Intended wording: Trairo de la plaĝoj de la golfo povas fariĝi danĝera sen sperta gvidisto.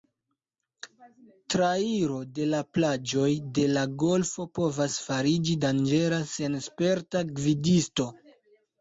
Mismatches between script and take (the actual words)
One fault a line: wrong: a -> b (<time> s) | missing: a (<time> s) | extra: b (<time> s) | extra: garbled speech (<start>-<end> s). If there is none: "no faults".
no faults